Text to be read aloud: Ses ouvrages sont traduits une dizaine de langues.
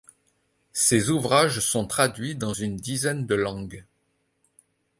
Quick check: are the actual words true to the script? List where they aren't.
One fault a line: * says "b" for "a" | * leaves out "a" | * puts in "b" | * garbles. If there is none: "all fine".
* puts in "dans"